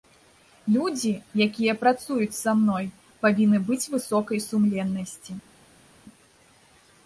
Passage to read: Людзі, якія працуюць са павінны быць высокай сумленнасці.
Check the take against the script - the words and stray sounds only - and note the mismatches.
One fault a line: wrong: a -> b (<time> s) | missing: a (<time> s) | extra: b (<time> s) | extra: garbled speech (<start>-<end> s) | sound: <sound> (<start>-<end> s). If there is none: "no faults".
extra: мной (2.6 s)